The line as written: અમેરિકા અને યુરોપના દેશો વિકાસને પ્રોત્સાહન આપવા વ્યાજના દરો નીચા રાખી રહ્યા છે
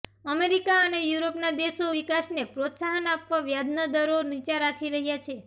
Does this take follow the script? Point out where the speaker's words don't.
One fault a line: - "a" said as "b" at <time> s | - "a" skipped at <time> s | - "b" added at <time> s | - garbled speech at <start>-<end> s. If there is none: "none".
none